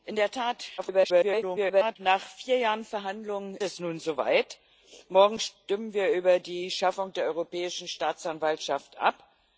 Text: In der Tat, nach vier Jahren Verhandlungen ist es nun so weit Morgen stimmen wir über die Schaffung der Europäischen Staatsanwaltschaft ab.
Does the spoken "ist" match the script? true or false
false